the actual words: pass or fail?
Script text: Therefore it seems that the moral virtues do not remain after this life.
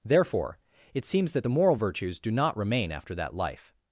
fail